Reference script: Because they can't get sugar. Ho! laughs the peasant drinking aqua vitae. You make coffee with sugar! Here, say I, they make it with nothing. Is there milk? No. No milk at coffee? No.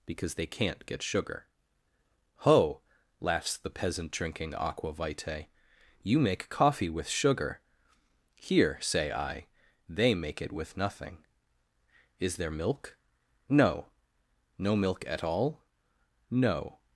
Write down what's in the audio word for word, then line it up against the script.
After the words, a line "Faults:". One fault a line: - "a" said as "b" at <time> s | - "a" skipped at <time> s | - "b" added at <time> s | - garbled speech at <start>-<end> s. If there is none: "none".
Because they can't get sugar. Ho! laughs the peasant drinking aqua vitae. You make coffee with sugar! Here, say I, they make it with nothing. Is there milk? No. No milk at all? No.
Faults:
- "coffee" said as "all" at 15.2 s